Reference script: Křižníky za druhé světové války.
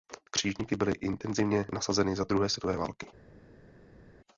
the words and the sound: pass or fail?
fail